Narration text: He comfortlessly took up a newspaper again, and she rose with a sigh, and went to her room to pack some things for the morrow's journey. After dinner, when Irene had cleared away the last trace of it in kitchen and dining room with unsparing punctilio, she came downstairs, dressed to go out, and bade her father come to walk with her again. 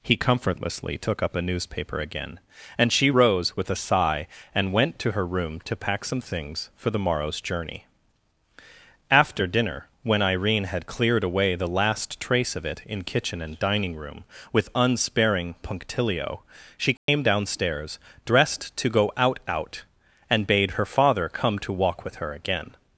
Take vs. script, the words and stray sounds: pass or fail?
fail